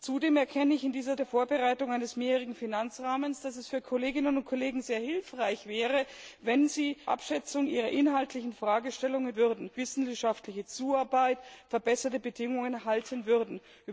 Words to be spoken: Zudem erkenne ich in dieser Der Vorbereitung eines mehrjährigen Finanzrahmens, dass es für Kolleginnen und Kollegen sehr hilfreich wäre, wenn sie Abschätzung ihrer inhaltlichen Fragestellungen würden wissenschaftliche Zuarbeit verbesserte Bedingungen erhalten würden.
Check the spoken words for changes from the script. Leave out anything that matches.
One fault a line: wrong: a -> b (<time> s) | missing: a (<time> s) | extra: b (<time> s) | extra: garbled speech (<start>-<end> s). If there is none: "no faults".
no faults